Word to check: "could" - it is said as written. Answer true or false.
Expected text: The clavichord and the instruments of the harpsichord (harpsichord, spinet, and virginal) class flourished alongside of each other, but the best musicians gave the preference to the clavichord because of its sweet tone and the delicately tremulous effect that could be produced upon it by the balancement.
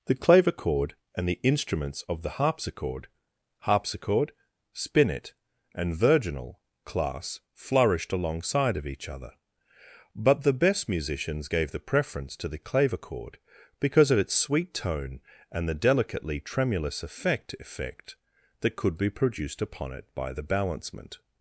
true